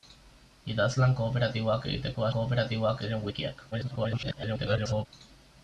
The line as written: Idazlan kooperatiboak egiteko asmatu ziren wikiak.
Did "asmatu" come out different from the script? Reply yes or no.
yes